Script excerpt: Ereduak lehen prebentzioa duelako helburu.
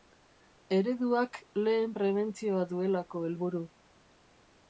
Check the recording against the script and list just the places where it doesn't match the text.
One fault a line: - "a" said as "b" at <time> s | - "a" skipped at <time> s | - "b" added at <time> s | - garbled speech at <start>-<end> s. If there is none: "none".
none